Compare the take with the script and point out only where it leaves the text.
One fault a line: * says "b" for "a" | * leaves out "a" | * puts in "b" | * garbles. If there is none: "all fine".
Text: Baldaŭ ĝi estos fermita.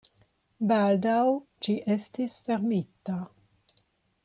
* says "estis" for "estos"